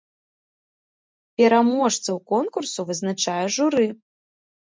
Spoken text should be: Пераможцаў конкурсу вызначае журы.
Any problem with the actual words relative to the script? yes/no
no